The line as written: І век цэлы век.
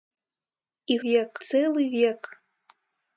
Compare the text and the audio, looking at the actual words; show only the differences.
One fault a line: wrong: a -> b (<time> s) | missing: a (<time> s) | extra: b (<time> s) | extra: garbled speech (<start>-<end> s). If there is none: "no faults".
no faults